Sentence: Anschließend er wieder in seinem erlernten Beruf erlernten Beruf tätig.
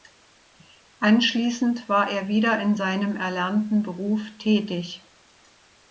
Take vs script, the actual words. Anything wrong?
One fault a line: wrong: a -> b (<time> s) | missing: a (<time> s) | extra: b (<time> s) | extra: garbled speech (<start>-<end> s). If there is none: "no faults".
extra: war (1.9 s)
missing: erlernten Beruf (4.2 s)